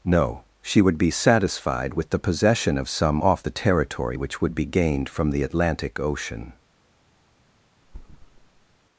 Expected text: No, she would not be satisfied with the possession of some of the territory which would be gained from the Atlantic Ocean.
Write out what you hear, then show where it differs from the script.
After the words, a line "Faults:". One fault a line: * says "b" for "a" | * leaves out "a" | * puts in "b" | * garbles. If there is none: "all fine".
No, she would be satisfied with the possession of some off the territory which would be gained from the Atlantic Ocean.
Faults:
* leaves out "not"
* says "off" for "of"